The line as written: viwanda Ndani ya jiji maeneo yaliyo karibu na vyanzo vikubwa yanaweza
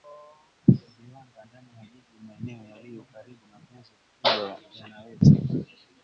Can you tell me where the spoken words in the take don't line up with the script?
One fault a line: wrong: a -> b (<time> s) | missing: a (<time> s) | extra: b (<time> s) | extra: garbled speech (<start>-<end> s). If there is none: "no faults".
no faults